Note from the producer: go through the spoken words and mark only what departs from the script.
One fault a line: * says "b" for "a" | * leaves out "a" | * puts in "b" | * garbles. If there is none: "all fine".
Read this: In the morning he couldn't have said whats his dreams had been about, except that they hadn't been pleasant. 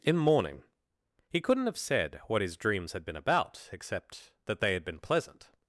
* says "what" for "whats"
* says "had" for "hadn't"